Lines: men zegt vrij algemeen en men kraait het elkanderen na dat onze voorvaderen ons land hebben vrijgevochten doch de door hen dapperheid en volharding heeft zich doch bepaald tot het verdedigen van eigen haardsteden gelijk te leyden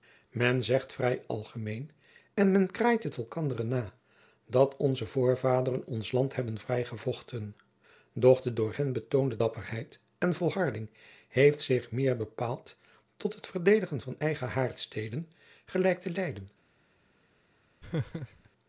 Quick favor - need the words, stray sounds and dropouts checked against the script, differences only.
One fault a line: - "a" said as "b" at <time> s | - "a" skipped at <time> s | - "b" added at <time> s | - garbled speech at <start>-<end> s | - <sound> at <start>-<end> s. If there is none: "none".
- "betoonde" added at 8.9 s
- "doch" said as "meer" at 11.9 s
- laugh at 17.8-18.5 s